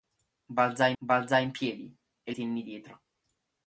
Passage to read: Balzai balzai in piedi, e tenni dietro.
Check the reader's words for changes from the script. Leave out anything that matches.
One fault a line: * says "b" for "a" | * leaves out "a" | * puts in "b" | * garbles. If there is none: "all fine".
all fine